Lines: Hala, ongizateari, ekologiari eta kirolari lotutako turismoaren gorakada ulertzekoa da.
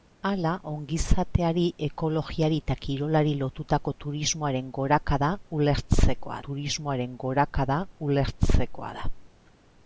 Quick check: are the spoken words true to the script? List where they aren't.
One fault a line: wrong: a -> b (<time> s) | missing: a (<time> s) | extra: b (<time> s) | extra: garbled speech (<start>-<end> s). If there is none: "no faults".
extra: turismoaren gorakada ulertzekoa (6.5 s)